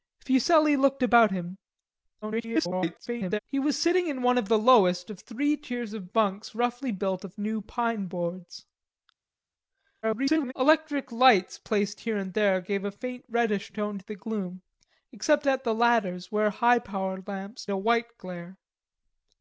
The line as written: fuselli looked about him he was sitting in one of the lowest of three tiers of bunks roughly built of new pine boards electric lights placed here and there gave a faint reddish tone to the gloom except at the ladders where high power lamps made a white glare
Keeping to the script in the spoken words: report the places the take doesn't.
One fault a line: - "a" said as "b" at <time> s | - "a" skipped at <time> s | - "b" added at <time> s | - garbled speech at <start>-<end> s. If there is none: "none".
- garbled speech at 2.2-3.4 s
- garbled speech at 10.0-10.5 s
- "made" skipped at 17.7 s